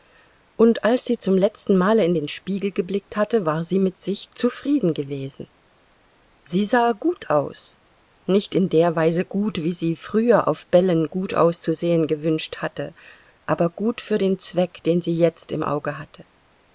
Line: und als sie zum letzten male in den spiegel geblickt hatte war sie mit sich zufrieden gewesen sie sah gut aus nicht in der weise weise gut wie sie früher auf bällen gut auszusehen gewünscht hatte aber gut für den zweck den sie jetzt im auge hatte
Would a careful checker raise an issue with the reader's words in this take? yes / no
yes